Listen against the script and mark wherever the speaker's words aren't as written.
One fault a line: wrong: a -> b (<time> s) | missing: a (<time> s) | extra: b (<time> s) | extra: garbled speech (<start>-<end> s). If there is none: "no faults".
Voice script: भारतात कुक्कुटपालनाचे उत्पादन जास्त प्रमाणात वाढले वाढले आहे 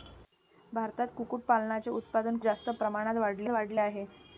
no faults